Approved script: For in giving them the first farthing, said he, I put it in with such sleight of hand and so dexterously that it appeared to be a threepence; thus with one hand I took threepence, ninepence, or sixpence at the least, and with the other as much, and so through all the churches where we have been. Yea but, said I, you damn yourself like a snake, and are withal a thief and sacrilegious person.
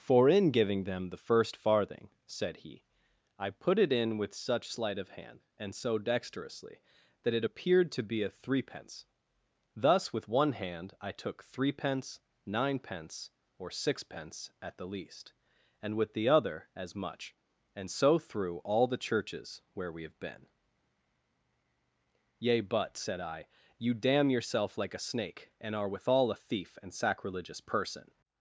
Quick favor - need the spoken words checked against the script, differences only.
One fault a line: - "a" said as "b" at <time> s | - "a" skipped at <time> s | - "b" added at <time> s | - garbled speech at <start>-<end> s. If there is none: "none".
none